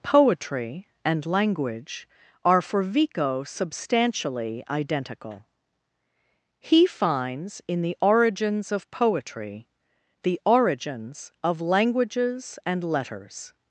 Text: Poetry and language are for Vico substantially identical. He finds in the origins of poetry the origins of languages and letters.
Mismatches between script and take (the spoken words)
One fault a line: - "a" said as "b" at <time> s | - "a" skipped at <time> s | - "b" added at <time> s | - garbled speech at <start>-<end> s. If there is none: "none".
none